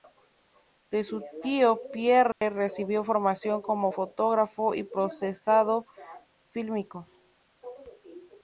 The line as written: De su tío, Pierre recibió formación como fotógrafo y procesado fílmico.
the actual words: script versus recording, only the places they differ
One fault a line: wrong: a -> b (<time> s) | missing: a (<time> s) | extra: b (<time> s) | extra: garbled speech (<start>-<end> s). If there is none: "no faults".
no faults